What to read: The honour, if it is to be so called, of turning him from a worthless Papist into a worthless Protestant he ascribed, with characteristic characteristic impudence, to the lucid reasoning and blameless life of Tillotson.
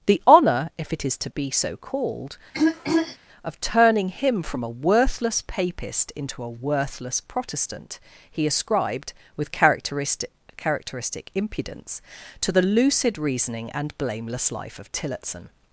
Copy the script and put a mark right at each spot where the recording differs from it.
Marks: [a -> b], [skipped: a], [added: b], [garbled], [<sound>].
The honour, if it is to be so called, [throat clearing] of turning him from a worthless Papist into a worthless Protestant he ascribed, with characteristic characteristic impudence, to the lucid reasoning and blameless life of Tillotson.